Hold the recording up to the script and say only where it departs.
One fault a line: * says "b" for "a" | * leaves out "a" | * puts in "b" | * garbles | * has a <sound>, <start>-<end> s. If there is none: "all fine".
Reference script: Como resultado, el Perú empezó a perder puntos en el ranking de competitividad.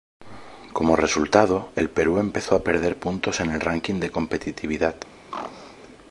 * has a throat clearing, 5.3-5.8 s